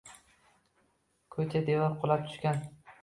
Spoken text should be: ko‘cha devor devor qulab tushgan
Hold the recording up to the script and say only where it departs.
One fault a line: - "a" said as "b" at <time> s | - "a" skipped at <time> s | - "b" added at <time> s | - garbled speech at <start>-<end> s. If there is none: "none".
- "devor" skipped at 2.0 s